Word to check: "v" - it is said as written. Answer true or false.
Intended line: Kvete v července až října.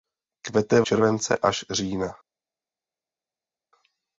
true